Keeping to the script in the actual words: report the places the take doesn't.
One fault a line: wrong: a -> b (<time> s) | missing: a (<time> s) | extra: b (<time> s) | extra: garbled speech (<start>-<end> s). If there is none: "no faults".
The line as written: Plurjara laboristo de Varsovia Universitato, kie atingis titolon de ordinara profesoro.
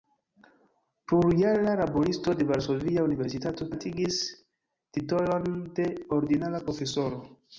missing: kie (3.7 s)